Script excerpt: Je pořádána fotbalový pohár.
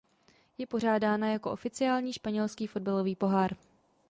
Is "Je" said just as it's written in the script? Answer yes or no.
yes